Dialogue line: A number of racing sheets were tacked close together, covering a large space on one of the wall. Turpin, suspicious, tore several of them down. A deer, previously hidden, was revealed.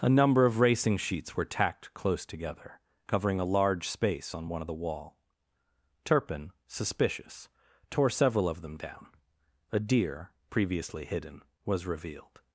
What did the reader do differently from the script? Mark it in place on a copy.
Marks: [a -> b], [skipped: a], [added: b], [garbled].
A number of racing sheets were tacked close together, covering a large space on one of the wall. Turpin, suspicious, tore several of them down. A deer, previously hidden, was revealed.